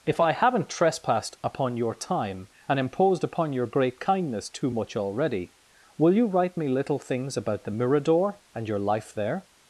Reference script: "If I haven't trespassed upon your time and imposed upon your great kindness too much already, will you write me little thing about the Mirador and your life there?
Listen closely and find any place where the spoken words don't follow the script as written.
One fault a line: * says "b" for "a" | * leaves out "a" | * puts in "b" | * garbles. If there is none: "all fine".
* says "things" for "thing"